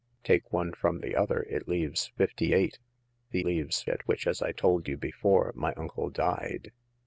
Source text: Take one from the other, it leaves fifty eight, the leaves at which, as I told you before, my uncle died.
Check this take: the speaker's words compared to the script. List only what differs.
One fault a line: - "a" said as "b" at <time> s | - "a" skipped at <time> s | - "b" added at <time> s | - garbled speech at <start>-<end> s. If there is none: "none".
none